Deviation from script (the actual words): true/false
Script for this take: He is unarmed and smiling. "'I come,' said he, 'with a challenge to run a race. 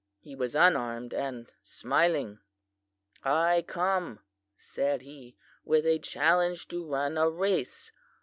true